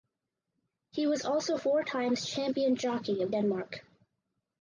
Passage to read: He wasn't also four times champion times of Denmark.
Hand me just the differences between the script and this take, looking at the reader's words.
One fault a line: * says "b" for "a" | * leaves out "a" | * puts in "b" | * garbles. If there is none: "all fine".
* says "was" for "wasn't"
* says "jockey" for "times"